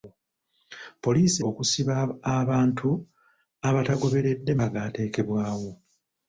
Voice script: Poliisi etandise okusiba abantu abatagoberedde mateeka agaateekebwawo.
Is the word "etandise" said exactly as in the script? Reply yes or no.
no